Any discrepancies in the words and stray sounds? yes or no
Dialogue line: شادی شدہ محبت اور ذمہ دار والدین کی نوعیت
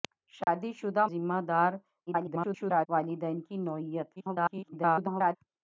yes